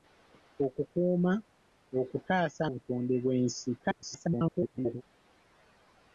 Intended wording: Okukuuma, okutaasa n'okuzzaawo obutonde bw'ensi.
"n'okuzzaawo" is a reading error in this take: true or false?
true